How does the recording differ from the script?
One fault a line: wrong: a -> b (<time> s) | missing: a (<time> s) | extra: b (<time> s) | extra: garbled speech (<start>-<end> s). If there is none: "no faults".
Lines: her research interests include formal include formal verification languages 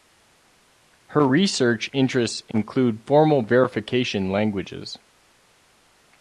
missing: include formal (3.4 s)